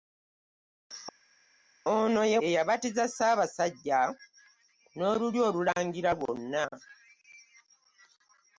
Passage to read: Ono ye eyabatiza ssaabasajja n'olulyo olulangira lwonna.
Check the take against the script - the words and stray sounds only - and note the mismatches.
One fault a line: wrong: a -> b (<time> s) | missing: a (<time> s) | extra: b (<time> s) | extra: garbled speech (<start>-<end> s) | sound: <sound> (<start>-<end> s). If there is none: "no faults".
no faults